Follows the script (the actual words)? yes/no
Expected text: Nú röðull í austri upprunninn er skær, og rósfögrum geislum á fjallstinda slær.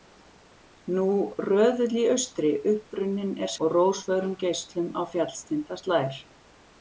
no